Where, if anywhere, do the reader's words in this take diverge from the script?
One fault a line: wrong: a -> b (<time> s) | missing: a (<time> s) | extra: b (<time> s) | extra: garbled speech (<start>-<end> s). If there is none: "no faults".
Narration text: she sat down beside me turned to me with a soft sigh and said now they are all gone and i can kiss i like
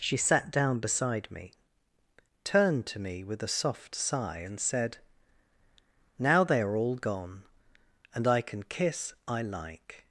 no faults